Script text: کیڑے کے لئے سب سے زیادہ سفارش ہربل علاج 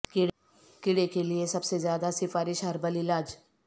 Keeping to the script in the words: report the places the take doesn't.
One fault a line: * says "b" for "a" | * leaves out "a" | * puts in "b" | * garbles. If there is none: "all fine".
all fine